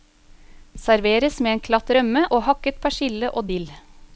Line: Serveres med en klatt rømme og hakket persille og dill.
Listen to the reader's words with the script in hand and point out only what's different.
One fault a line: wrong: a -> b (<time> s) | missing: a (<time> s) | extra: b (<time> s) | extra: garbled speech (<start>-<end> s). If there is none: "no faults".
no faults